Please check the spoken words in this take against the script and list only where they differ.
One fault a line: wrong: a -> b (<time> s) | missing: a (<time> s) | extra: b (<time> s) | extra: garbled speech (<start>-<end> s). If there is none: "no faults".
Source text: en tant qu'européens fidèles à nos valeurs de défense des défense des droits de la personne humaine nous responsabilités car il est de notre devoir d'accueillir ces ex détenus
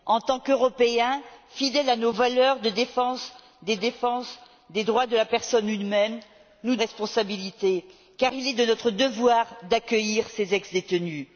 no faults